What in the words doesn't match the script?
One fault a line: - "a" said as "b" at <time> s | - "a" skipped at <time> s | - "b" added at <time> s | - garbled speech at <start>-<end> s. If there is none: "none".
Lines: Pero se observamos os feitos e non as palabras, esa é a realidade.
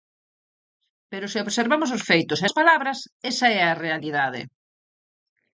- "non" skipped at 2.5 s